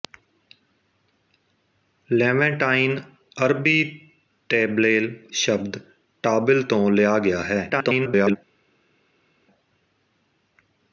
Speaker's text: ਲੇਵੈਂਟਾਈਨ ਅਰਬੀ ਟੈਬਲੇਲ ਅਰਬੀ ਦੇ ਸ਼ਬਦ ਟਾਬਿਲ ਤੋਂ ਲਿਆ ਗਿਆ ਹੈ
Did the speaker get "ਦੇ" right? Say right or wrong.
wrong